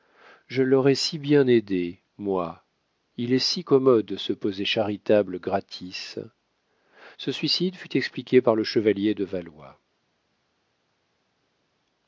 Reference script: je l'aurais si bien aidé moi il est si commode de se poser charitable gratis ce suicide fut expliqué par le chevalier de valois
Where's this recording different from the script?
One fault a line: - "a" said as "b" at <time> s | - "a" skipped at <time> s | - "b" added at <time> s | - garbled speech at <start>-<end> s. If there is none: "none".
none